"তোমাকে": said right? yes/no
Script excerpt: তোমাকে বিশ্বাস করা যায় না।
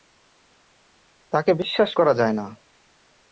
no